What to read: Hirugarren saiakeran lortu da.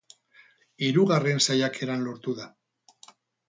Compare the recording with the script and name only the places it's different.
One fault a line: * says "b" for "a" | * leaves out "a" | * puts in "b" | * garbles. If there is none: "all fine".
all fine